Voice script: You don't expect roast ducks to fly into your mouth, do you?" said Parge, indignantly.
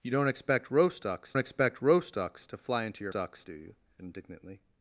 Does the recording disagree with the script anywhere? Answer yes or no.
yes